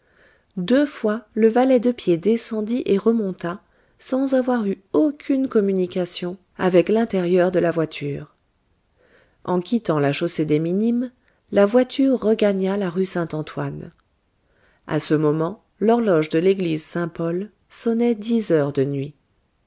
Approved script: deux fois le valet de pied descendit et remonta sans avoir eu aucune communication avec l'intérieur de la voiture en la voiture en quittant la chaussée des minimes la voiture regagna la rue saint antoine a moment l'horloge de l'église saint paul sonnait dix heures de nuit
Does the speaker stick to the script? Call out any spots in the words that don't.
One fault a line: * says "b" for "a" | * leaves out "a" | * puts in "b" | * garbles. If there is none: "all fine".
* leaves out "la voiture en"
* puts in "ce"